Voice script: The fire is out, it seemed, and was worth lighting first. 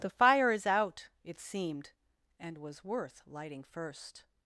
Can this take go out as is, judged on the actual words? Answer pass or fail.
pass